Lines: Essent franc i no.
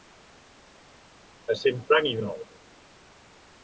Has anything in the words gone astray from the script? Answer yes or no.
no